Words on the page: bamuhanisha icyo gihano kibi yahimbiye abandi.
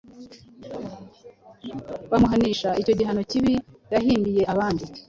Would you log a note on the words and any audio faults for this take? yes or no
no